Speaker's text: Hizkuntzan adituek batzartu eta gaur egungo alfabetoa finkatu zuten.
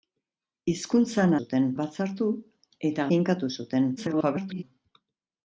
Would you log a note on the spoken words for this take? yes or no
yes